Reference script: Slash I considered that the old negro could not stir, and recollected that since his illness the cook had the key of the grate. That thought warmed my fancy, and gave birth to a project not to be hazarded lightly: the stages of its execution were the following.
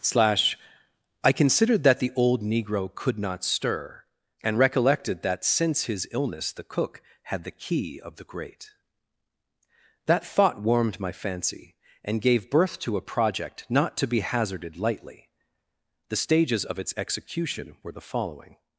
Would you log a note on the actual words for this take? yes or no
no